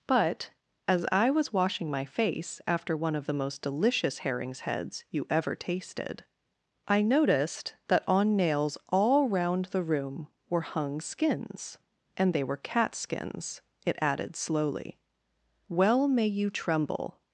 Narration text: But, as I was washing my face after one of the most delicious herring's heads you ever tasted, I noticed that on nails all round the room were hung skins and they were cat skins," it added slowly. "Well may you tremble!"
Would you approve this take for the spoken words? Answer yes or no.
yes